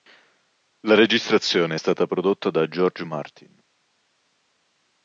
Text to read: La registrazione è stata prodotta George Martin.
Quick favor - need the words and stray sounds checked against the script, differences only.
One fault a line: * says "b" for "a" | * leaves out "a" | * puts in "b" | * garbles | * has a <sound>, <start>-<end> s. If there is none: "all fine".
* puts in "da"